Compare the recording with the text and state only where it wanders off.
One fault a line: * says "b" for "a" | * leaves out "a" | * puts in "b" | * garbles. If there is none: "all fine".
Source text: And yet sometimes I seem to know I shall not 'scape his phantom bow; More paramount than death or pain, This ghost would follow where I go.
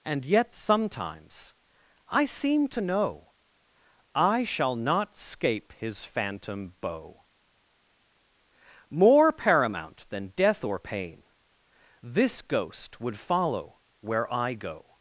all fine